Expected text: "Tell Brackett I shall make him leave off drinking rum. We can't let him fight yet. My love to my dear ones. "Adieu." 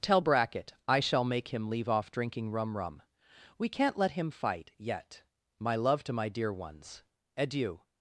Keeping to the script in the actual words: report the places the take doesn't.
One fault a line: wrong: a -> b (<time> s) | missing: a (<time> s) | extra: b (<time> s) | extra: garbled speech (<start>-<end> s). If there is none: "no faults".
extra: rum (2.8 s)